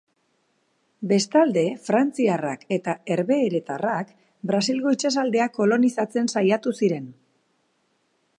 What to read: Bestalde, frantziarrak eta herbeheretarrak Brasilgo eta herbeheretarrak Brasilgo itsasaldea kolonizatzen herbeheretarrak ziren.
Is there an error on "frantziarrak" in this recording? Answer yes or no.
no